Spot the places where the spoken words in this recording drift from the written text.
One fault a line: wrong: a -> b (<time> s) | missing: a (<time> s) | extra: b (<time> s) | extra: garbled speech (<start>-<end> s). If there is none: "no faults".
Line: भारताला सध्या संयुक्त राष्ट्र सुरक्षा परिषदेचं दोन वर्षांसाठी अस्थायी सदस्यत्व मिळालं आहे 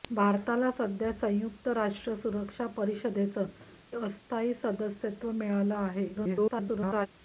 missing: दोन वर्षांसाठी (3.5 s)
extra: garbled speech (6.1-7.1 s)